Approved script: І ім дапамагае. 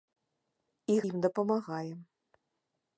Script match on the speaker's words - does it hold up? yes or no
yes